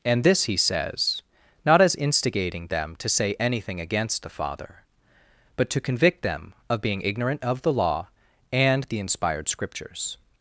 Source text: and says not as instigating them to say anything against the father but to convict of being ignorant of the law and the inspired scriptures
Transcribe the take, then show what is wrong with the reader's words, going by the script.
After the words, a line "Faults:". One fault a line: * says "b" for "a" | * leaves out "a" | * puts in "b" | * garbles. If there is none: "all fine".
and this he says not as instigating them to say anything against the father but to convict them of being ignorant of the law and the inspired scriptures
Faults:
* puts in "this he"
* puts in "them"